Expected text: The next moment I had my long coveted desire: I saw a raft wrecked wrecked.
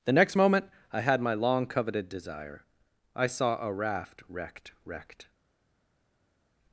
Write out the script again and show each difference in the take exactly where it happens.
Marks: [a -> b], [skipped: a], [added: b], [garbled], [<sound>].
The next moment I had my long coveted desire: I saw a raft wrecked wrecked.